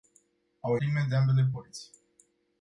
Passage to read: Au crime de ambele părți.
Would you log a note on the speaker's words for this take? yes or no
no